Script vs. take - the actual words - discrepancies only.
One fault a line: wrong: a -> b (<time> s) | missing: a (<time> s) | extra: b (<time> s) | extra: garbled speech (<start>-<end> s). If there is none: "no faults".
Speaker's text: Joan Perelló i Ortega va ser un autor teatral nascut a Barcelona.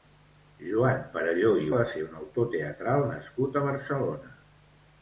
missing: Ortega (1.7 s)